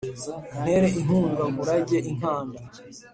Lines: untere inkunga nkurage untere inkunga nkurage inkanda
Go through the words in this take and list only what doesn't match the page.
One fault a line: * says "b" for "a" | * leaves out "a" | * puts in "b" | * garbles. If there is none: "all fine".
* leaves out "untere inkunga nkurage"